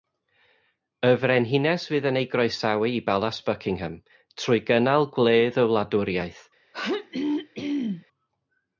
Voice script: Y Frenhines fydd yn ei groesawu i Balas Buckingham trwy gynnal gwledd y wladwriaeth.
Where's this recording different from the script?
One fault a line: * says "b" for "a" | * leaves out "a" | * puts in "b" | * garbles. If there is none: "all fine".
all fine